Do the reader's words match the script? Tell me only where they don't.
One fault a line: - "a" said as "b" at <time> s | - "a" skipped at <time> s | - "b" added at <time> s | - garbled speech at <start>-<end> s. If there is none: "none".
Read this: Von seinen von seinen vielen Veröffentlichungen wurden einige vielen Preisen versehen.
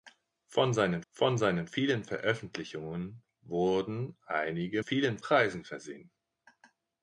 none